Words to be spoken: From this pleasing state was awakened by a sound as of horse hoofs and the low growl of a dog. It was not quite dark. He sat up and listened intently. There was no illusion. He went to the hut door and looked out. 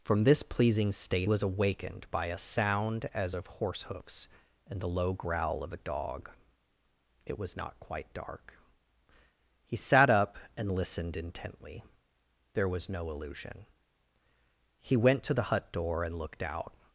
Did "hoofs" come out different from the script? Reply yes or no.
no